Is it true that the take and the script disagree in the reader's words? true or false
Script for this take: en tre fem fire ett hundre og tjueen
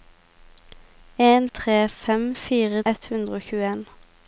false